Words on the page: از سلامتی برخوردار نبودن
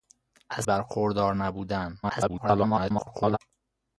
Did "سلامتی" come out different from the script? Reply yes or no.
yes